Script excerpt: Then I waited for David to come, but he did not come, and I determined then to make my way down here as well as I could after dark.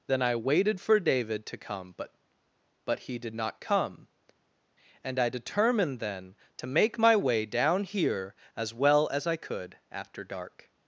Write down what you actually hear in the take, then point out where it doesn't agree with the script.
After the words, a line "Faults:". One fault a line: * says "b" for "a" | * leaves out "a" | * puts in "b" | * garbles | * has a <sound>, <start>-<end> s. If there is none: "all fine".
Then I waited for David to come, but but he did not come, and I determined then to make my way down here as well as I could after dark.
Faults:
* puts in "but"